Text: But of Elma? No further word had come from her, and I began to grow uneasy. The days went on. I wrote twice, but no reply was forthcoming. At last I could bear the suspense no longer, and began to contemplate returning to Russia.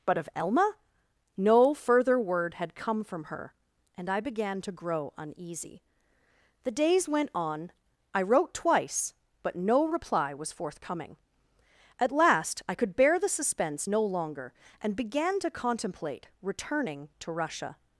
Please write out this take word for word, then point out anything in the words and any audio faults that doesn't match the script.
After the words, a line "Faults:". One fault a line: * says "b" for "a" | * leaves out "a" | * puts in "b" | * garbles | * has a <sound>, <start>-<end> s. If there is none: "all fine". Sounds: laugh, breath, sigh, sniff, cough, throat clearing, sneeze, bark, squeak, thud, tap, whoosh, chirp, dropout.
But of Elma? No further word had come from her, and I began to grow uneasy. The days went on. I wrote twice, but no reply was forthcoming. At last I could bear the suspense no longer, and began to contemplate returning to Russia.
Faults:
all fine